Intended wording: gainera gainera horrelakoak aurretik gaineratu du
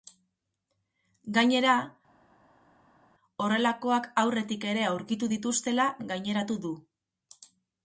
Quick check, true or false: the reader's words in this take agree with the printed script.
false